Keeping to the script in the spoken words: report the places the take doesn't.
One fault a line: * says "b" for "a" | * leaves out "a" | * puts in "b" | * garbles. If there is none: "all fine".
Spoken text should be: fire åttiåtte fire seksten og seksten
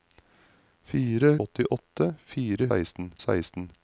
all fine